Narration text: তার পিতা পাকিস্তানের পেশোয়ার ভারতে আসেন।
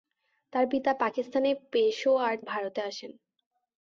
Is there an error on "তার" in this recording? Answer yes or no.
no